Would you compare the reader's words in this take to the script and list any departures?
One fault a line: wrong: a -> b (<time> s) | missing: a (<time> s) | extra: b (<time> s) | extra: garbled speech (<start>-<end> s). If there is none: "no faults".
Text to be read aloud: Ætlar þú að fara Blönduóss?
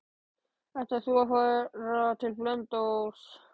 extra: til (2.2 s)